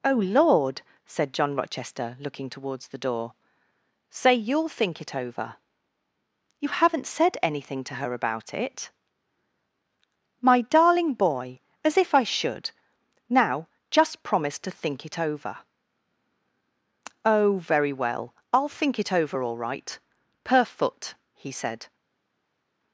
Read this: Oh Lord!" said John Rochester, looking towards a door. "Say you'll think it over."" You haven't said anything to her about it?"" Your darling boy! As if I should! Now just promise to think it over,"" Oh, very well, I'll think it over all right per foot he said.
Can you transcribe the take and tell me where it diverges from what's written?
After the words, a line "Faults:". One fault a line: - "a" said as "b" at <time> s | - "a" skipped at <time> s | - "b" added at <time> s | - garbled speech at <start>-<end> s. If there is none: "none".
Oh Lord!" said John Rochester, looking towards the door. "Say you'll think it over."" You haven't said anything to her about it?"" My darling boy! As if I should! Now just promise to think it over,"" Oh, very well, I'll think it over all right per foot he said.
Faults:
- "a" said as "the" at 2.9 s
- "Your" said as "My" at 10.4 s